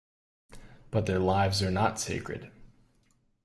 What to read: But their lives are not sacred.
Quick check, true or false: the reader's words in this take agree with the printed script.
true